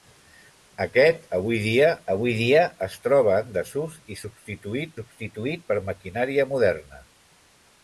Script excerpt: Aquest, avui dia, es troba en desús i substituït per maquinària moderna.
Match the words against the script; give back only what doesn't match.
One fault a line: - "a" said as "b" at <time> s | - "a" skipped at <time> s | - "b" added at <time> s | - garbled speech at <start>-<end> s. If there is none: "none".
- "avui dia" added at 2.1 s
- "substituït" added at 5.0 s